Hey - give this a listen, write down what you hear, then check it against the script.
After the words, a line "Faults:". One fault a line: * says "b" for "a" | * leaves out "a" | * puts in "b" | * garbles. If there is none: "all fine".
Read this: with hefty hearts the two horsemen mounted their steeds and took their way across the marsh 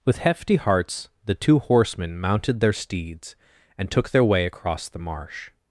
with hefty hearts the two horsemen mounted their steeds and took their way across the marsh
Faults:
all fine